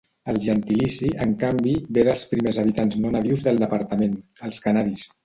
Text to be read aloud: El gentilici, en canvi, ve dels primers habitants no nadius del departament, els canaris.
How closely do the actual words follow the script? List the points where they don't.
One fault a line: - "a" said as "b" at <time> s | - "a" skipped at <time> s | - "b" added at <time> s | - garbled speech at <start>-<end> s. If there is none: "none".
none